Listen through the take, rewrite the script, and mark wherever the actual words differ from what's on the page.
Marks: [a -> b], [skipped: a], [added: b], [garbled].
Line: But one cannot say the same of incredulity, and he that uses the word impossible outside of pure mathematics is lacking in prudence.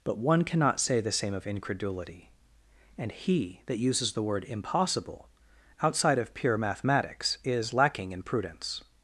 But one cannot say the same of incredulity, and he that uses the word impossible outside of pure mathematics is lacking in prudence.